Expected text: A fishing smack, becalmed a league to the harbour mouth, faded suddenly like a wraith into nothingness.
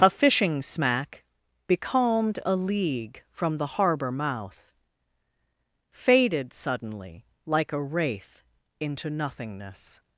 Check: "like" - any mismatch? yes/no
no